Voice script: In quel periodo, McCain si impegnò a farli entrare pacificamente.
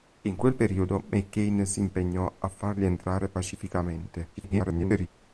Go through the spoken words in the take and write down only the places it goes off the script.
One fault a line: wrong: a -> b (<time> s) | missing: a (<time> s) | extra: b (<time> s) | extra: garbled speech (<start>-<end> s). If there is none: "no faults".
extra: garbled speech (4.3-5.1 s)